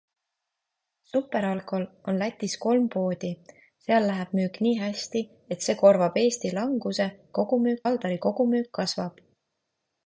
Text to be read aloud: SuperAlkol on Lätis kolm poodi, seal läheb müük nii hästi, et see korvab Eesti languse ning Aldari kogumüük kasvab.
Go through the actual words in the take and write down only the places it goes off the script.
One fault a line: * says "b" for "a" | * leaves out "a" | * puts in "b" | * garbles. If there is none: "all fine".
* says "kogumüük" for "ning"